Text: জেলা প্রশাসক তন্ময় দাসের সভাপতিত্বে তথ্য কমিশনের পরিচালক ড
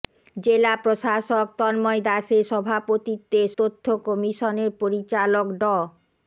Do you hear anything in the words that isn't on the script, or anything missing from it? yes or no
no